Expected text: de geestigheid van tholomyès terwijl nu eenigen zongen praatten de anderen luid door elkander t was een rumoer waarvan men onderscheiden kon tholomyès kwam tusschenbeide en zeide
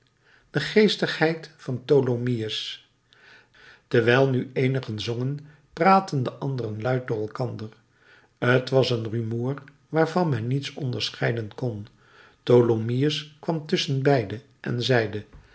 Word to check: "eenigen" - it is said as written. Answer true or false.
true